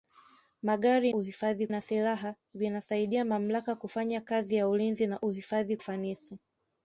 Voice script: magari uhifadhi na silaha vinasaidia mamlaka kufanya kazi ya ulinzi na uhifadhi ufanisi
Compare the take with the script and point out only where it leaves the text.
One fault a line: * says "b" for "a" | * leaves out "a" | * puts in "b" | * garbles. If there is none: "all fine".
all fine